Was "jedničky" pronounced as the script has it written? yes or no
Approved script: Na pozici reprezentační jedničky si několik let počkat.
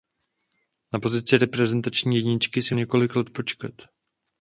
yes